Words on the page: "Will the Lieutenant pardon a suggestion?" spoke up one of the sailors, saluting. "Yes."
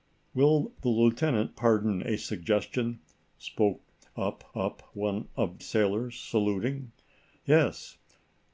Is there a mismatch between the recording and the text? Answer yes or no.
yes